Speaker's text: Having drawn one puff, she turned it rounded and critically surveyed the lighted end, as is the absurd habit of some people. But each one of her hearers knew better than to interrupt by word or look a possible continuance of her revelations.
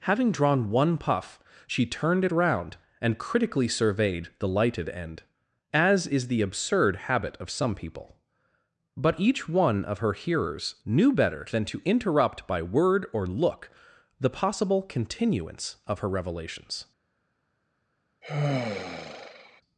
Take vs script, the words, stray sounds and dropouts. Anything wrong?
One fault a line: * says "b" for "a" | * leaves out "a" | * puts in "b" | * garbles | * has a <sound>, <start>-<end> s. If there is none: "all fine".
* says "round" for "rounded"
* says "the" for "a"
* has a sigh, 18.2-19.6 s